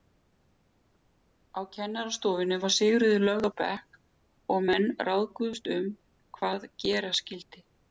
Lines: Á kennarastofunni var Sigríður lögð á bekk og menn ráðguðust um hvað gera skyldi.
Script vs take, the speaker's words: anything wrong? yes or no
no